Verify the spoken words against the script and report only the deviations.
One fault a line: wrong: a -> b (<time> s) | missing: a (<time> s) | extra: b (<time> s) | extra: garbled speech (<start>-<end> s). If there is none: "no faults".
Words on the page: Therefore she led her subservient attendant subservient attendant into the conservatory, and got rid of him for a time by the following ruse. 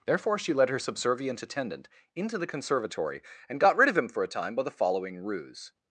missing: subservient attendant (1.9 s)